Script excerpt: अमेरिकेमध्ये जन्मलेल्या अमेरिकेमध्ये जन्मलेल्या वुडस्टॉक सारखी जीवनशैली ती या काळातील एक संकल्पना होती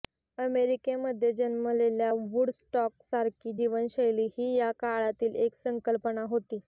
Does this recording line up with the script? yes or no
no